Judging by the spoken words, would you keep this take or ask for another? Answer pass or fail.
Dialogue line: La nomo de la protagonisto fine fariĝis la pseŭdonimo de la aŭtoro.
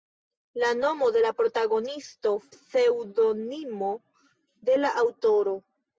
fail